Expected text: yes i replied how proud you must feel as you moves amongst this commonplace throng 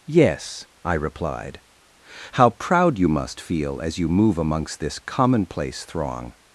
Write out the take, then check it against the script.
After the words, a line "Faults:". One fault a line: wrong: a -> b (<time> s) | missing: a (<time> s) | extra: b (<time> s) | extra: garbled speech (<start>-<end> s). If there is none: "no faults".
yes i replied how proud you must feel as you move amongst this commonplace throng
Faults:
wrong: moves -> move (4.1 s)